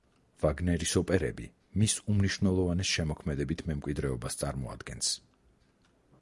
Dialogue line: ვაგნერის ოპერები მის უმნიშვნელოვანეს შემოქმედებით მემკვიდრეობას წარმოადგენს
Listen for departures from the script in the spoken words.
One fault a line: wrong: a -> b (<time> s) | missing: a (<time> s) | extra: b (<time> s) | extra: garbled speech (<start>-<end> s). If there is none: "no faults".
no faults